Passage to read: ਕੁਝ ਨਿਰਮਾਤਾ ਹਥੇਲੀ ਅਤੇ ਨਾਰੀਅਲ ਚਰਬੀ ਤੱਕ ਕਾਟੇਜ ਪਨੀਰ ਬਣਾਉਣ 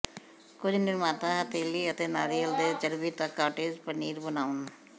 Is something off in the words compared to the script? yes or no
yes